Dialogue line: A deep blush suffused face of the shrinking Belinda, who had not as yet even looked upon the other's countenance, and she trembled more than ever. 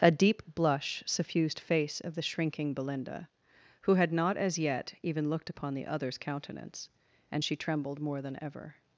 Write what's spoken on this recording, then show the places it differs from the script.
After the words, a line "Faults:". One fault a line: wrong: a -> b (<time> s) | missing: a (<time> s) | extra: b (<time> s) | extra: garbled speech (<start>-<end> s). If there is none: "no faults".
A deep blush suffused face of the shrinking Belinda, who had not as yet even looked upon the other's countenance, and she trembled more than ever.
Faults:
no faults